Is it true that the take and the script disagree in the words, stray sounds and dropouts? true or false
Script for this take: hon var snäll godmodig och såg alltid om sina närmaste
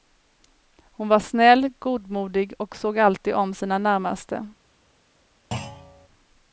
true